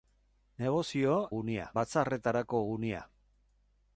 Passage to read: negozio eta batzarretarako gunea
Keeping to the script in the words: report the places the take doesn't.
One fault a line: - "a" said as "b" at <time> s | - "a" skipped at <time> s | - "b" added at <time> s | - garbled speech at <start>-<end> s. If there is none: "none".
- "eta" said as "gunea" at 1.4 s